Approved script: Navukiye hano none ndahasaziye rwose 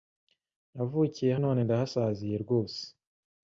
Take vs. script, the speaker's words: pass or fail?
fail